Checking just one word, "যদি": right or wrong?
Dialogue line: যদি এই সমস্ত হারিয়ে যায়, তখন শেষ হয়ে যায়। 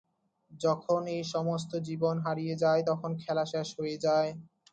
wrong